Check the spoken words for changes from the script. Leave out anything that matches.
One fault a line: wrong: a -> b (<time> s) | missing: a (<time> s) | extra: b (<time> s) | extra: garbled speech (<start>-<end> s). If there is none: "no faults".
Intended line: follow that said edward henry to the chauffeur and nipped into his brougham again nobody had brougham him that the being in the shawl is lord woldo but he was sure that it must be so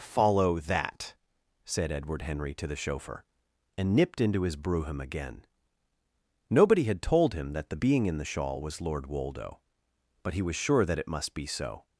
wrong: brougham -> told (7.0 s)
wrong: is -> was (8.6 s)